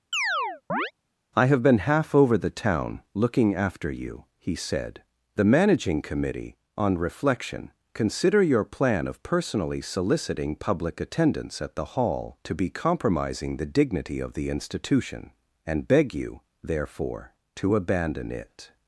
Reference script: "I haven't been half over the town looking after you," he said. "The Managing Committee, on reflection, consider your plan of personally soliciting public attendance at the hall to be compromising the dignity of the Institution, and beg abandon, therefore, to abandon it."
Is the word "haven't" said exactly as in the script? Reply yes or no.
no